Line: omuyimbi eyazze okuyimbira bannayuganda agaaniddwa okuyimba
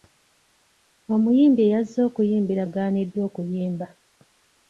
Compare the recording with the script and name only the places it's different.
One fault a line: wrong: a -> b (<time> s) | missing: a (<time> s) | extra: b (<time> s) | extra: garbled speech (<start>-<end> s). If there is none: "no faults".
missing: bannayuganda (2.6 s)